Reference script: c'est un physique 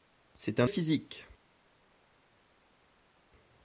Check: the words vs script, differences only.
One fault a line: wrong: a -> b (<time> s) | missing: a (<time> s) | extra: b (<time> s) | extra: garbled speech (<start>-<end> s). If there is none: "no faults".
no faults